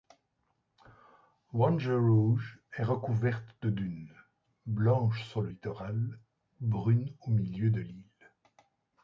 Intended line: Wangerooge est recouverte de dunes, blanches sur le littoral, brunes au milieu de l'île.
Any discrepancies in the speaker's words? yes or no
no